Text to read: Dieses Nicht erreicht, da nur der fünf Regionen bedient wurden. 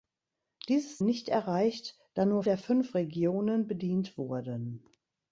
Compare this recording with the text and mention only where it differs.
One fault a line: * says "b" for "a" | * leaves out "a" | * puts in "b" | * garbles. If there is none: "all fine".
all fine